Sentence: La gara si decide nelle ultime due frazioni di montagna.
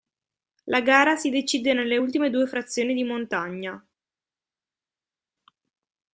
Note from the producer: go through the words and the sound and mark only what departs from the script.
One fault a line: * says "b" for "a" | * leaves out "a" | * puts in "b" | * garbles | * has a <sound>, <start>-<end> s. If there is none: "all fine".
all fine